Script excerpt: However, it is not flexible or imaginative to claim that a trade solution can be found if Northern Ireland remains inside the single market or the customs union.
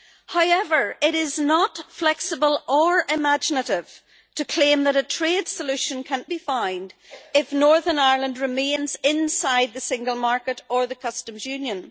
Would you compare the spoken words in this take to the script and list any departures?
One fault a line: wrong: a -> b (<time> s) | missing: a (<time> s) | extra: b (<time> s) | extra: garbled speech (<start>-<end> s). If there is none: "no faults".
no faults